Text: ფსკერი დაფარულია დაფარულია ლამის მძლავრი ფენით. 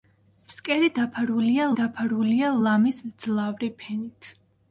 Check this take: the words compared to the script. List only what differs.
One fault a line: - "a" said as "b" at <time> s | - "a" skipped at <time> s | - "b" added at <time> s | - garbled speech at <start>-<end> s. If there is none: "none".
none